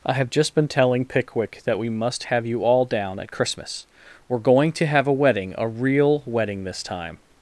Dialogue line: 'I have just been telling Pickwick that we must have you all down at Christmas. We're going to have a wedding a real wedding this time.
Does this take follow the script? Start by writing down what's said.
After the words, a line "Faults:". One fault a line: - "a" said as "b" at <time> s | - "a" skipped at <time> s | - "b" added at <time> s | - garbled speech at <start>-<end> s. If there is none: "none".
'I have just been telling Pickwick that we must have you all down at Christmas. We're going to have a wedding a real wedding this time.
Faults:
none